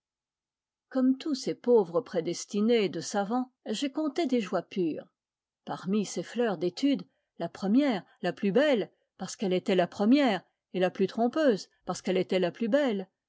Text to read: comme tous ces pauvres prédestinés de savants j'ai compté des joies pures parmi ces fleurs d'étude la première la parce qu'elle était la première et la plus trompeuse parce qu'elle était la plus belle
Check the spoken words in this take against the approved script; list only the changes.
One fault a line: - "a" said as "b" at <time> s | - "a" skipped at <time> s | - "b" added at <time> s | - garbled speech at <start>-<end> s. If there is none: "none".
- "plus belle" added at 8.3 s